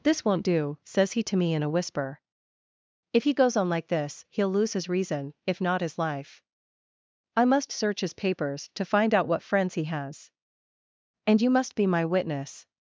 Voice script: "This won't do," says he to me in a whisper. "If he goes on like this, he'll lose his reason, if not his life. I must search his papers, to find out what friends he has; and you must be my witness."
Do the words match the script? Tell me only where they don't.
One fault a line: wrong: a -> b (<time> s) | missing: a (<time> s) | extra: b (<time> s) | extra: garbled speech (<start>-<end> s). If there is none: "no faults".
no faults